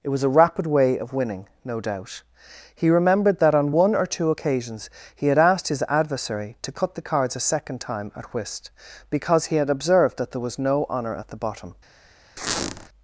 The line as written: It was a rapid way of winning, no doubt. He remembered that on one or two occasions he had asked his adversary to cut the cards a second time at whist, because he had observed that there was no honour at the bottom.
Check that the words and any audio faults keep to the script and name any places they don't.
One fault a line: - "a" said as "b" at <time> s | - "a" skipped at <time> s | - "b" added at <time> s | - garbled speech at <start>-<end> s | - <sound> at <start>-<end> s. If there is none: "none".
- squeak at 12.4-12.9 s